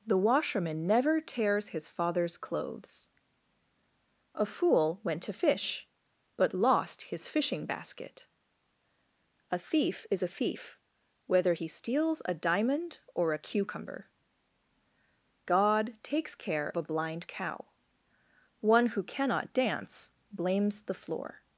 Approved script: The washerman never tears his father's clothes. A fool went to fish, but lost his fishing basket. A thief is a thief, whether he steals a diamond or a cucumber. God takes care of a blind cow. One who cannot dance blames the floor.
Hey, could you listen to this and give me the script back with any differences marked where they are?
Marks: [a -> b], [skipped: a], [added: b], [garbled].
The washerman never tears his father's clothes. A fool went to fish, but lost his fishing basket. A thief is a thief, whether he steals a diamond or a cucumber. God takes care [skipped: of] a blind cow. One who cannot dance blames the floor.